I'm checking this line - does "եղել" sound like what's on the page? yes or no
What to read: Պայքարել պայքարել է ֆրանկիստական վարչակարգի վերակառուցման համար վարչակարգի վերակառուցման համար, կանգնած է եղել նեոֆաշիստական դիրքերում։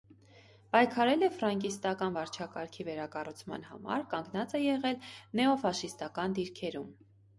yes